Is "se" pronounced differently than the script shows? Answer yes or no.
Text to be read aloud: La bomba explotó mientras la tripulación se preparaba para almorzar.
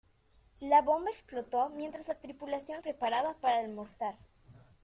yes